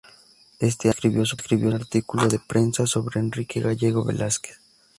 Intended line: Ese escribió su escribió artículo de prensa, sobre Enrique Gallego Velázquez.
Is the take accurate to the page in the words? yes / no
yes